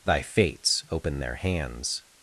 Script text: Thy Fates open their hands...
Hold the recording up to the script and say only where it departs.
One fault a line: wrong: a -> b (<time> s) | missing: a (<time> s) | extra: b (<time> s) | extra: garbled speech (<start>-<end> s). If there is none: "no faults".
no faults